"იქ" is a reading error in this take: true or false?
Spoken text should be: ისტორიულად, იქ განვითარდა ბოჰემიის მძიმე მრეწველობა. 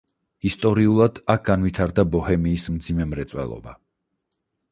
true